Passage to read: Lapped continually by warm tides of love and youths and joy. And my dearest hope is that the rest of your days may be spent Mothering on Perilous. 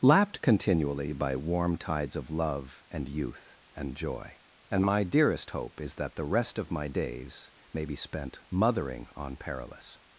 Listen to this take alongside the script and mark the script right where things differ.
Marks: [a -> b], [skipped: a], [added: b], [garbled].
Lapped continually by warm tides of love and [youths -> youth] and joy. And my dearest hope is that the rest of [your -> my] days may be spent Mothering on Perilous.